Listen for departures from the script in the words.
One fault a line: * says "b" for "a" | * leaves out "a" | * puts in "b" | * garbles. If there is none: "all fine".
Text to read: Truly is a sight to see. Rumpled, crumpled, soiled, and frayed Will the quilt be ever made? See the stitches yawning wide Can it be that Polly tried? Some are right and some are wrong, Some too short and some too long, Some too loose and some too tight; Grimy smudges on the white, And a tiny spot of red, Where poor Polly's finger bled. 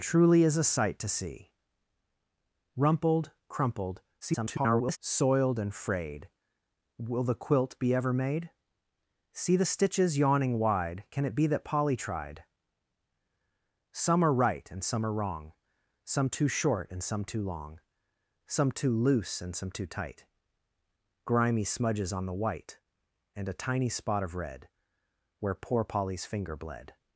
* garbles